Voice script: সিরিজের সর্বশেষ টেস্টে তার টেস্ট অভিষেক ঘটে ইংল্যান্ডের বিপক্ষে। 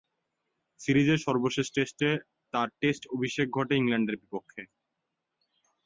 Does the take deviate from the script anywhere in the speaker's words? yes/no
no